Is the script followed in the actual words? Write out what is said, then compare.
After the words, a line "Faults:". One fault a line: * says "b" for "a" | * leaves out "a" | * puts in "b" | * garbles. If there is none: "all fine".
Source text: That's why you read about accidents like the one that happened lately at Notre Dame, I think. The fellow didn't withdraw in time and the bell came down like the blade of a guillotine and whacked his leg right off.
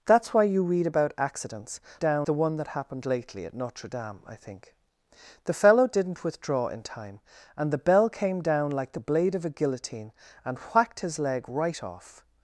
That's why you read about accidents down the one that happened lately at Notre Dame, I think. The fellow didn't withdraw in time and the bell came down like the blade of a guillotine and whacked his leg right off.
Faults:
* says "down" for "like"